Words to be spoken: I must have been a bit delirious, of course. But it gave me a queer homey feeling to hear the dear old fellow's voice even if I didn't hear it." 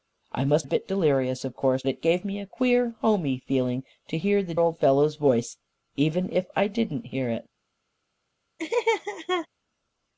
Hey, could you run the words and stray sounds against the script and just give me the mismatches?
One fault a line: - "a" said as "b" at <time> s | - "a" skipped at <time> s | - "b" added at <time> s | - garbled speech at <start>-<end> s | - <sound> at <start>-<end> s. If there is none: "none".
- "have been" skipped at 0.7 s
- "But" skipped at 1.8 s
- "dear" skipped at 4.5 s
- laugh at 8.6-9.5 s